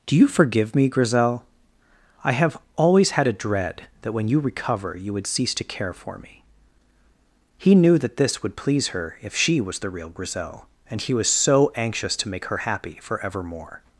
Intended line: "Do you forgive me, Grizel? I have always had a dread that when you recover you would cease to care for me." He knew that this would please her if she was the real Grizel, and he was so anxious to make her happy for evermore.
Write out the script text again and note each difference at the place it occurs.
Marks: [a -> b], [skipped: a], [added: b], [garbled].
"Do you forgive me, Grizel? I have always had a dread that when you recover you would cease to care for me." He knew that this would please her if she was the real Grizel, and he was so anxious to make her happy for evermore.